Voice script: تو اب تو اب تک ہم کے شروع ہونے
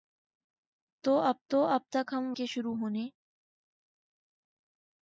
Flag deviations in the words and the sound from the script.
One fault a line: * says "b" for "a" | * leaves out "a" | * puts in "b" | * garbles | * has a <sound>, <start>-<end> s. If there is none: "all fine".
all fine